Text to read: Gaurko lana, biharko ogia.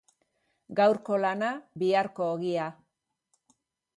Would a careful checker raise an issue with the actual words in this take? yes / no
no